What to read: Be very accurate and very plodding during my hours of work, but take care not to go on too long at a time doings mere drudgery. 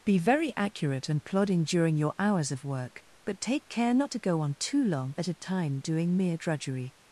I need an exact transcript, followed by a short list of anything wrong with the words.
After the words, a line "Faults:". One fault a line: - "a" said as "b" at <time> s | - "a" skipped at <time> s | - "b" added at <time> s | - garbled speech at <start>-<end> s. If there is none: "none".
Be very accurate and plodding during your hours of work, but take care not to go on too long at a time doing mere drudgery.
Faults:
- "very" skipped at 1.2 s
- "my" said as "your" at 1.9 s
- "doings" said as "doing" at 5.8 s